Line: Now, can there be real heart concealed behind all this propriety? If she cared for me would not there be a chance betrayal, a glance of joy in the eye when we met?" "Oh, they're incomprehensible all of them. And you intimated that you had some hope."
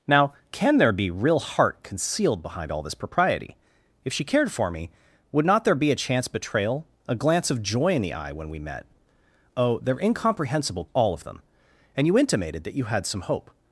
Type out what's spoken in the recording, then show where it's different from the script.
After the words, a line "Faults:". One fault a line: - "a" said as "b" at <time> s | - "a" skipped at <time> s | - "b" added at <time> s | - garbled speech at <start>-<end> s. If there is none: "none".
Now, can there be real heart concealed behind all this propriety? If she cared for me would not there be a chance betrayal, a glance of joy in the eye when we met?" "Oh, they're incomprehensible all of them. And you intimated that you had some hope."
Faults:
none